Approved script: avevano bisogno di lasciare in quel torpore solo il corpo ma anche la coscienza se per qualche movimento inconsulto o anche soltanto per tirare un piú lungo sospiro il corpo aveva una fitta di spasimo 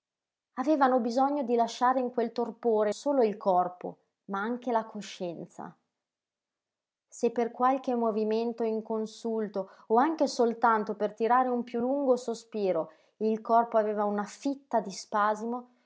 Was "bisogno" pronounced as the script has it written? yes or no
yes